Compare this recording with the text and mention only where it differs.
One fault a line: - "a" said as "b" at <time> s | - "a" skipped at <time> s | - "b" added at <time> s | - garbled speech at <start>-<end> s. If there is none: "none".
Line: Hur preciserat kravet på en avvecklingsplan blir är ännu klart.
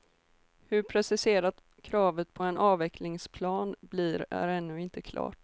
- "inte" added at 4.8 s